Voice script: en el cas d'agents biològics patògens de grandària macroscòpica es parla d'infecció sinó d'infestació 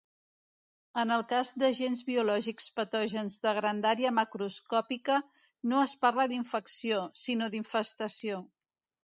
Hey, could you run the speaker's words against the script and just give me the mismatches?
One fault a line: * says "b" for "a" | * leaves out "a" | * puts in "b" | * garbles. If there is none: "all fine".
* puts in "no"